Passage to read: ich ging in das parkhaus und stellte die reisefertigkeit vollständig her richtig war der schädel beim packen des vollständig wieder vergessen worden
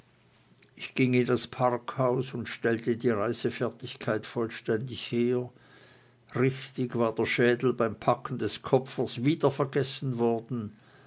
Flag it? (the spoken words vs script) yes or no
yes